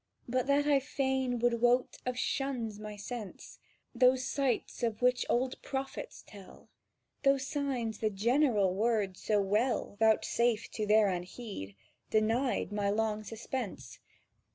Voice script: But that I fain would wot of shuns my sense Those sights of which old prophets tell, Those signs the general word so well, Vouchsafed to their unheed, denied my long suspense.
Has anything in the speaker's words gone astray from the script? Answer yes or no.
no